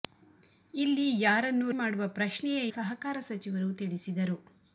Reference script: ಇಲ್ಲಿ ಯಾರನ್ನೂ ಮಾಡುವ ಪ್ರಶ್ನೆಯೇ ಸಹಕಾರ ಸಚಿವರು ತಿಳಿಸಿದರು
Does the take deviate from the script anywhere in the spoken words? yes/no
no